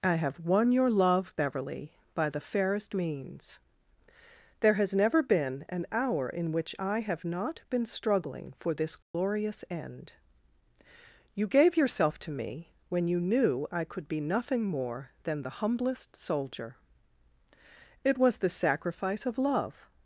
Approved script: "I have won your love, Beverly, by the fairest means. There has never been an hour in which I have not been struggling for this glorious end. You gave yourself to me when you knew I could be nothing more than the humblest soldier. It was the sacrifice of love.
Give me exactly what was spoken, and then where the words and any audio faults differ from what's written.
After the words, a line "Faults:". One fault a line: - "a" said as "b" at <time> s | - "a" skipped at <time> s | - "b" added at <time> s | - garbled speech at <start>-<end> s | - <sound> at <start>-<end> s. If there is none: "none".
"I have won your love, Beverly, by the fairest means. There has never been an hour in which I have not been struggling for this glorious end. You gave yourself to me when you knew I could be nothing more than the humblest soldier. It was the sacrifice of love.
Faults:
- dropout at 9.0-9.1 s